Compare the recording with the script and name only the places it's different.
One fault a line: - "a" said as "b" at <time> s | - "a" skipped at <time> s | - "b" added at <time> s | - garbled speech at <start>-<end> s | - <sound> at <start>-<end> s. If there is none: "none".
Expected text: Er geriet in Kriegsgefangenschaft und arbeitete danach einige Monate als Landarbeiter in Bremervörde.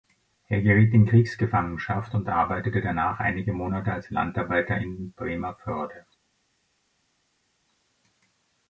none